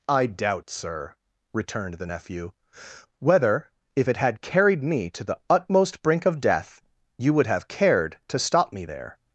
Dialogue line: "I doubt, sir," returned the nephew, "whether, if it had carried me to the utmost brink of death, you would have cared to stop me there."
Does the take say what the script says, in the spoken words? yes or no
yes